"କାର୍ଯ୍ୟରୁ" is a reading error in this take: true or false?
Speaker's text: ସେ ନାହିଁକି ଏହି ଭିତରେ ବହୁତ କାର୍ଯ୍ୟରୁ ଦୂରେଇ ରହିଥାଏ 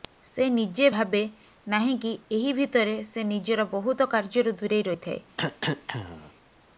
false